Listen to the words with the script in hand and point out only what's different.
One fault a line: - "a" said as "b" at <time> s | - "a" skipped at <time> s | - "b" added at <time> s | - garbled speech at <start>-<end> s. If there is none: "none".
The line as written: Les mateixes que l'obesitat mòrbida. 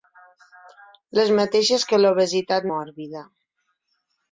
none